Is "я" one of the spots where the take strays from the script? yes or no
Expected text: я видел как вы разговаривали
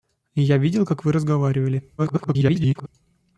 no